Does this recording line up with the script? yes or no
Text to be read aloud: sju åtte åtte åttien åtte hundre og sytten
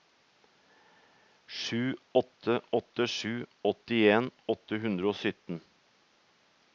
no